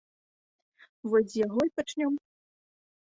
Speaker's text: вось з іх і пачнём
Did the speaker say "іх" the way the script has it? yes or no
no